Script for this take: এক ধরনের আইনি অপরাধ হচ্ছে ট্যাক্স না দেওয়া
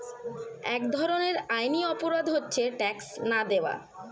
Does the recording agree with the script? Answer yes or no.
yes